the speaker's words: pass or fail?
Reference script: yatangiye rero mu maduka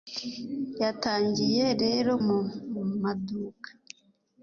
pass